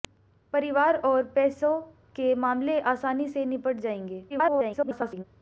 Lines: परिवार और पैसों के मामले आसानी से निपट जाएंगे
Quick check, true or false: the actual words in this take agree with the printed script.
false